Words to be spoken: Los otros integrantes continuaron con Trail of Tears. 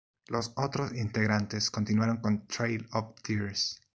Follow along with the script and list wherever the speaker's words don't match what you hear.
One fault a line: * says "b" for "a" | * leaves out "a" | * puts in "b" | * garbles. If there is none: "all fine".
all fine